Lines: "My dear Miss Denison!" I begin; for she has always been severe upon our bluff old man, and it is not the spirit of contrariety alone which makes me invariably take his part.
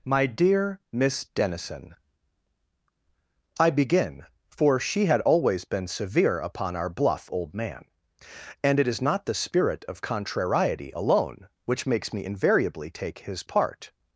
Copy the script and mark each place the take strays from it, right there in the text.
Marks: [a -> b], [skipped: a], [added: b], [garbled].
"My dear Miss Denison!" I begin; for she [has -> had] always been severe upon our bluff old man, and it is not the spirit of contrariety alone which makes me invariably take his part.